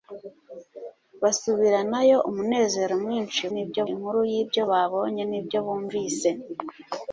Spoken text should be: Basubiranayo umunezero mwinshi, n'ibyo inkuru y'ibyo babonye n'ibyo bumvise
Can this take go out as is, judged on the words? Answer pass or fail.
pass